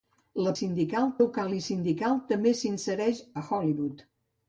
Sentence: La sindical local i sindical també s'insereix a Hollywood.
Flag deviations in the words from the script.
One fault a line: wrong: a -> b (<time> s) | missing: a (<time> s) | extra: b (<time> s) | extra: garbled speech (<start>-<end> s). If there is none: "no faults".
no faults